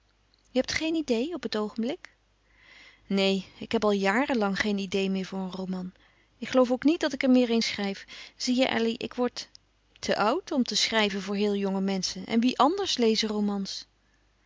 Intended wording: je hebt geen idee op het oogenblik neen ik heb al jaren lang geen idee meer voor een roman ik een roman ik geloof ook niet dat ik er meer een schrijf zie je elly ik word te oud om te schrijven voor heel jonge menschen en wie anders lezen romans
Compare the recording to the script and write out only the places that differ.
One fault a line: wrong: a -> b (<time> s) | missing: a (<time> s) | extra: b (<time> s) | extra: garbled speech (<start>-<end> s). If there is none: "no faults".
missing: een roman ik (6.5 s)